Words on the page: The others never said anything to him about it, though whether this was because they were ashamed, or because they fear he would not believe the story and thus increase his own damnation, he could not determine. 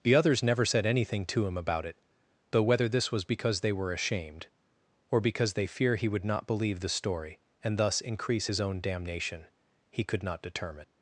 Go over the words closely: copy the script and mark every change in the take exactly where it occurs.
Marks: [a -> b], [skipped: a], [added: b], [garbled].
The others never said anything to him about it, though whether this was because they were ashamed, or because they fear he would not believe the story and thus increase his own damnation, he could not determine.